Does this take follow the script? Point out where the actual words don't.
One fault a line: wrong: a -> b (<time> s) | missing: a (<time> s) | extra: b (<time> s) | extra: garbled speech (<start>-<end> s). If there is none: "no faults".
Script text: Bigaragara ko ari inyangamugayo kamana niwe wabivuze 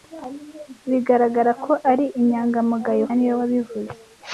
missing: kamana (3.0 s)